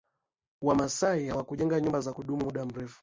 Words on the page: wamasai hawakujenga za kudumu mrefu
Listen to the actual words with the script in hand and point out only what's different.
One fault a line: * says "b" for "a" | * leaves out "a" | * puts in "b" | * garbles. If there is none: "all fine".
* puts in "nyumba"
* puts in "muda"